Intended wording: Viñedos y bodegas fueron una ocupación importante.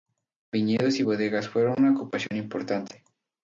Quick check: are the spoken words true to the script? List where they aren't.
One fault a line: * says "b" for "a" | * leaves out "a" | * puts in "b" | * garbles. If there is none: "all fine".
all fine